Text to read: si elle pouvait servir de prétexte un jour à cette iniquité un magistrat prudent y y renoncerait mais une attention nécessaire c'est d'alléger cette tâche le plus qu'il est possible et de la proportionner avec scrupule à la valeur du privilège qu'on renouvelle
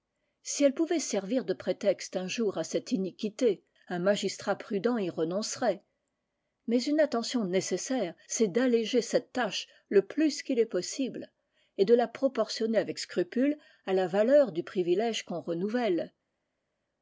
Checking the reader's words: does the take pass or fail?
fail